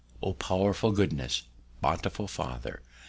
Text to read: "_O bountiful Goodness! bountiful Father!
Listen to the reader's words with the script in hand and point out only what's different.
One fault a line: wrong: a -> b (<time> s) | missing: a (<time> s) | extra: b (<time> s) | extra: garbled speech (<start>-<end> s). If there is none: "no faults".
wrong: bountiful -> powerful (0.4 s)